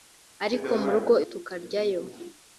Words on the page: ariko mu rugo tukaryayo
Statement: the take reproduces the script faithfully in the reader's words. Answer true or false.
true